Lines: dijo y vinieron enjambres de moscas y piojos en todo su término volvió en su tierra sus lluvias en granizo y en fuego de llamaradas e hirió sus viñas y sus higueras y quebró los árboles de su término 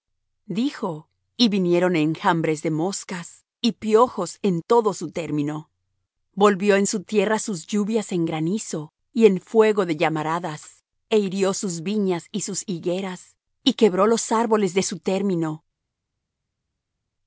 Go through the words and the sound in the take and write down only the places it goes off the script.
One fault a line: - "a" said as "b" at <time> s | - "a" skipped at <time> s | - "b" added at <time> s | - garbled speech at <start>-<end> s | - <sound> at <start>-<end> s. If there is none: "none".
none